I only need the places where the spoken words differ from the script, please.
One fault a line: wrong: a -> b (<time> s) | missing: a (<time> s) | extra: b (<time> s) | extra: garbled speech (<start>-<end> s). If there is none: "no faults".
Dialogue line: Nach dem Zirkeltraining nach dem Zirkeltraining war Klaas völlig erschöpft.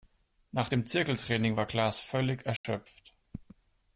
missing: nach dem Zirkeltraining (1.6 s)